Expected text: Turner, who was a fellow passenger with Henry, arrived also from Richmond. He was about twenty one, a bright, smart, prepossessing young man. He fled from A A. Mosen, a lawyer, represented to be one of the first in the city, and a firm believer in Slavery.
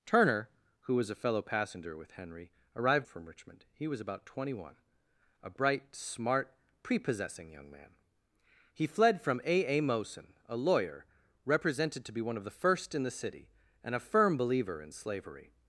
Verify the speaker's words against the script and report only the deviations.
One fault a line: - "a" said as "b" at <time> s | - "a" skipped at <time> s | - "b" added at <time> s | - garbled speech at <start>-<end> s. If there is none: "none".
- "also" skipped at 3.1 s